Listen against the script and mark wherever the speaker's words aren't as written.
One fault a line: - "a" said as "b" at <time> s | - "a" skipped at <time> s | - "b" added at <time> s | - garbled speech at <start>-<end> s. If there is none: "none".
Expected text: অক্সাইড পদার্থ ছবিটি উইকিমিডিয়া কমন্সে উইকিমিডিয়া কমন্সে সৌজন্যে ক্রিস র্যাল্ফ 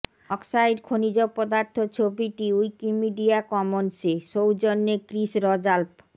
- "খনিজ" added at 0.8 s
- "উইকিমিডিয়া কমন্সে" skipped at 4.1 s